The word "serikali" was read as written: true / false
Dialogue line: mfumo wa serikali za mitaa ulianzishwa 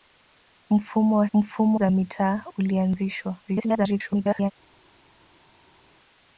false